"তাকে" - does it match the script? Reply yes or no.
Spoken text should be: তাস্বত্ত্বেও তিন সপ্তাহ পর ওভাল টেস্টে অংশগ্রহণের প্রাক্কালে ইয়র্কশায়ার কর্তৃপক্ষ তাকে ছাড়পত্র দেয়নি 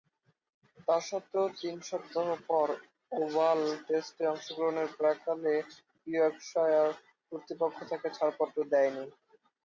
yes